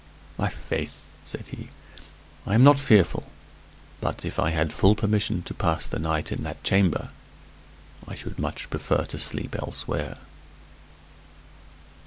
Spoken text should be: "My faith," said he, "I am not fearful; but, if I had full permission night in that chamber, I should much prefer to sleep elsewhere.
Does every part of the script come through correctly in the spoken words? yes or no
no